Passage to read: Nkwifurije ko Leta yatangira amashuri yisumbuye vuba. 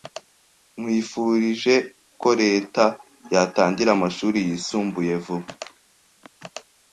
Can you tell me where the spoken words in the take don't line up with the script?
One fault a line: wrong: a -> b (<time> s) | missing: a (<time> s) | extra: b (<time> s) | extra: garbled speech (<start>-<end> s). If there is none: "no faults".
no faults